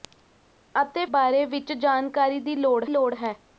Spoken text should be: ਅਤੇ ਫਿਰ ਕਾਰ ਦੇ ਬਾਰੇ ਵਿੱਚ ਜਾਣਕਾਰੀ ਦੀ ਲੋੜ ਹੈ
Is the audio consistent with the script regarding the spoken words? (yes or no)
no